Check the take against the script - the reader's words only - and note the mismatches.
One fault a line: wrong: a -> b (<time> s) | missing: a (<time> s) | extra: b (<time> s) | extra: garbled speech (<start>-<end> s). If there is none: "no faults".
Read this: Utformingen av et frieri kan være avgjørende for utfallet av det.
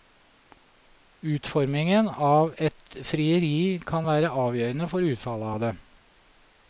no faults